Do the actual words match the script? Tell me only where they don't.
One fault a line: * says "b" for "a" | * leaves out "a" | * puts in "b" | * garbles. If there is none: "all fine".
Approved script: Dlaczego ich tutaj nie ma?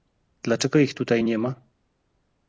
all fine